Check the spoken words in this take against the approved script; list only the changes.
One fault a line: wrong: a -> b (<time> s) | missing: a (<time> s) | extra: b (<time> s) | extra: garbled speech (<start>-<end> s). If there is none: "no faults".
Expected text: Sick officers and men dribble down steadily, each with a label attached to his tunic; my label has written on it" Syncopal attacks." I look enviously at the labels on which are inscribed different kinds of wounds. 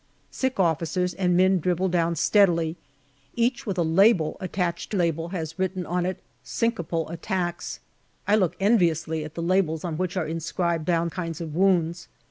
missing: his tunic my (5.0 s)
wrong: different -> down (10.8 s)